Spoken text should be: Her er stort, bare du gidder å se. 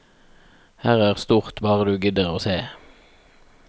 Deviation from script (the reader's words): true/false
false